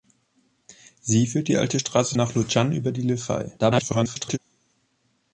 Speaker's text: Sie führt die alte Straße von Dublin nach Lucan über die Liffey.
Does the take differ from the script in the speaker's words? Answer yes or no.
yes